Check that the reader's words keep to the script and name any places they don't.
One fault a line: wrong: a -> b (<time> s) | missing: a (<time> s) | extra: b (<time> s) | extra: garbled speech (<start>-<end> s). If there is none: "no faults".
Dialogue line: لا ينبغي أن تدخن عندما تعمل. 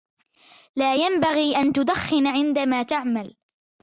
no faults